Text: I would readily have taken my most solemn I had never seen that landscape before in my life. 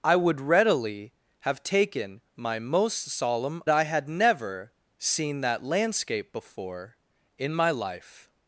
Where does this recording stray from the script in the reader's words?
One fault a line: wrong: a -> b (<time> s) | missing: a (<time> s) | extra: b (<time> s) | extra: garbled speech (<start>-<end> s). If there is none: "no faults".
no faults